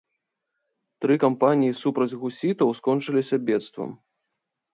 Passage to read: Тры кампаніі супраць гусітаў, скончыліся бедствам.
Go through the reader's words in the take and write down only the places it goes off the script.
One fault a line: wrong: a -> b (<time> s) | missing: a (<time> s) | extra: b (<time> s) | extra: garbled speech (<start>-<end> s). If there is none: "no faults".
no faults